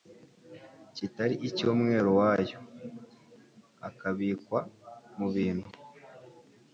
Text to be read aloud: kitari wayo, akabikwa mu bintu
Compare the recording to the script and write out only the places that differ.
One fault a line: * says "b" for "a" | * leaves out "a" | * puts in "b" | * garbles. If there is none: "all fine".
* puts in "icy'umwero"